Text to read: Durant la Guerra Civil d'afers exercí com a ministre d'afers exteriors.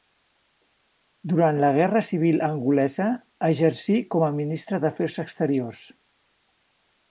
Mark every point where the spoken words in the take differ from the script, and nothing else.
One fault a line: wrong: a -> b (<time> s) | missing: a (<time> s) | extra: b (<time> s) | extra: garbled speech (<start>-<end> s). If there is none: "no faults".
wrong: d'afers -> angolesa (2.5 s)